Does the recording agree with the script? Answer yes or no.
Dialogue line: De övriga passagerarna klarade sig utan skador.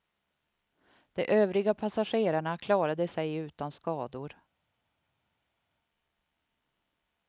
yes